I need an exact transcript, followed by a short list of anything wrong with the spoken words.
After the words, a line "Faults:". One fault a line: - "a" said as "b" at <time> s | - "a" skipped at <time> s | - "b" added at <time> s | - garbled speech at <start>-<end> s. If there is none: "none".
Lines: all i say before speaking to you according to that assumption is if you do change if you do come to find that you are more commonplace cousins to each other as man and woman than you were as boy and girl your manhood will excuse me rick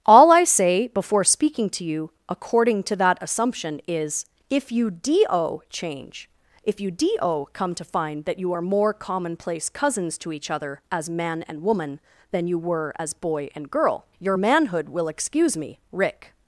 all i say before speaking to you according to that assumption is if you do change if you do come to find that you are more commonplace cousins to each other as man and woman than you were as boy and girl your manhood will excuse me rick
Faults:
none